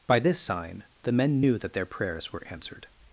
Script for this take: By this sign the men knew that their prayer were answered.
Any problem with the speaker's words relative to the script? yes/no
yes